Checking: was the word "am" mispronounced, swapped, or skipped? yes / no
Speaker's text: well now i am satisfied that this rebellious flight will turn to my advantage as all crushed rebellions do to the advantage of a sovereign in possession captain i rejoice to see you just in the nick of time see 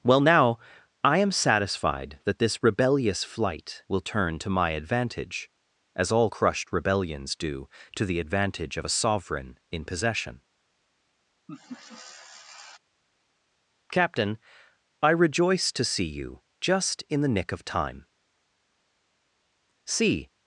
no